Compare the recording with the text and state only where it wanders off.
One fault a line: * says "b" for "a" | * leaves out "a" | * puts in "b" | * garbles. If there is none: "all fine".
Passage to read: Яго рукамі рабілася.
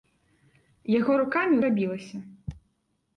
all fine